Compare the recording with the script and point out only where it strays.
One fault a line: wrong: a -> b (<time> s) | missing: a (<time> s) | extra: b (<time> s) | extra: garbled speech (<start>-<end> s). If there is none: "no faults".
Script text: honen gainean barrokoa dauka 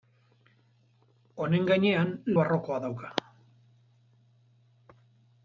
no faults